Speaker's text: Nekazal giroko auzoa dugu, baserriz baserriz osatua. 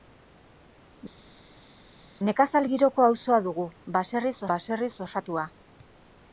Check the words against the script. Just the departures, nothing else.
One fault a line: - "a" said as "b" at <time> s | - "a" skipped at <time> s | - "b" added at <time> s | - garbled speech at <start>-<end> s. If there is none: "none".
none